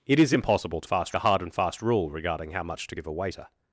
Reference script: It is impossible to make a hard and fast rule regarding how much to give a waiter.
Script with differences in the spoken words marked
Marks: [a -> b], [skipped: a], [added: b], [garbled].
It is impossible to [make -> fast] a hard and fast rule regarding how much to give a waiter.